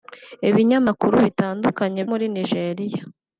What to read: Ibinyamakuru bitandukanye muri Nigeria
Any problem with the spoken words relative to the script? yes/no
no